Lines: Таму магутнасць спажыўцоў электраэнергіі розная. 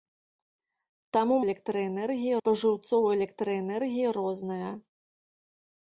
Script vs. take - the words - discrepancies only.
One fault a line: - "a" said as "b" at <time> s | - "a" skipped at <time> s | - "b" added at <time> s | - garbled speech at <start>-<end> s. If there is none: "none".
- "магутнасць" said as "электраэнергіі" at 1.5 s